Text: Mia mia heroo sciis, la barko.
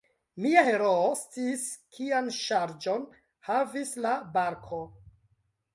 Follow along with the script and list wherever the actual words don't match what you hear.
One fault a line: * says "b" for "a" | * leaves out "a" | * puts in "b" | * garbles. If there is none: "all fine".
* leaves out "mia"
* puts in "kian ŝarĝon havis"